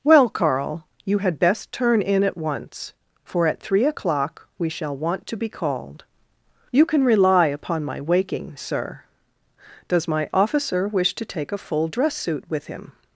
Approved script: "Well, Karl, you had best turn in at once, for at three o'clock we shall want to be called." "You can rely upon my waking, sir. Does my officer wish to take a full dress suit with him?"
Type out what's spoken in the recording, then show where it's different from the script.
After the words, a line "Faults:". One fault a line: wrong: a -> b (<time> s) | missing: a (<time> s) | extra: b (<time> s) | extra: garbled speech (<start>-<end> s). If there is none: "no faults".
"Well, Karl, you had best turn in at once, for at three o'clock we shall want to be called." "You can rely upon my waking, sir. Does my officer wish to take a full dress suit with him?"
Faults:
no faults